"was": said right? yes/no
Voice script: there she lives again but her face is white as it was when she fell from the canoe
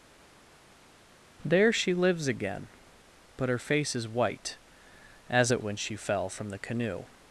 no